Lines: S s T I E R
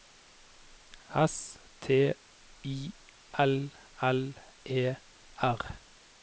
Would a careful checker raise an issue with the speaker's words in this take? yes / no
yes